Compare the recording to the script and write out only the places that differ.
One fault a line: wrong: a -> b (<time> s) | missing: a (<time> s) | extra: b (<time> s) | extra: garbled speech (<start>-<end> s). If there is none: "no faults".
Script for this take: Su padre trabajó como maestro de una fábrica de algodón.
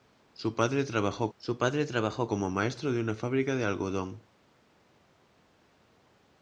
extra: su padre trabajó (1.4 s)